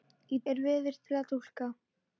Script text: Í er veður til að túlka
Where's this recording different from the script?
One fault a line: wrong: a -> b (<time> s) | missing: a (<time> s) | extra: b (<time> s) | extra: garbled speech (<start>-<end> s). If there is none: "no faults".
no faults